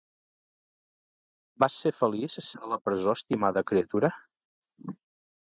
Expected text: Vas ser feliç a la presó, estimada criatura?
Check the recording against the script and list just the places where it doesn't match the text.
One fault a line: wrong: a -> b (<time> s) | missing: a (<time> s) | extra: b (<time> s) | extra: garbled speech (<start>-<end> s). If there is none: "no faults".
no faults